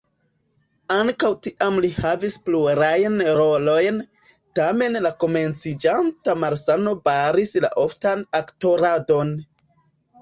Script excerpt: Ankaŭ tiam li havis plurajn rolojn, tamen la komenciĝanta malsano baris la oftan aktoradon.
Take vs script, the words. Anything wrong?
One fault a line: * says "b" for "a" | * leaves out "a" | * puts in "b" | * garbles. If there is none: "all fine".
all fine